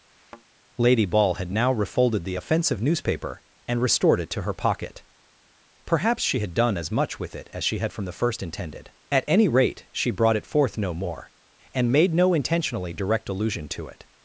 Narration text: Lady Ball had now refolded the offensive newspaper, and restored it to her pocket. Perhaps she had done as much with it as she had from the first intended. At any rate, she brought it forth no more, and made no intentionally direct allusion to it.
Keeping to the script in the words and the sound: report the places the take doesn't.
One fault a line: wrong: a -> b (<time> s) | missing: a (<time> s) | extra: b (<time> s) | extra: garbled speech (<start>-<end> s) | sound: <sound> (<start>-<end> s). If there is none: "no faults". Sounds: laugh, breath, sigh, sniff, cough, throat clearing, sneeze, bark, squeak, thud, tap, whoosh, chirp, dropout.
sound: thud (0.1-0.4 s)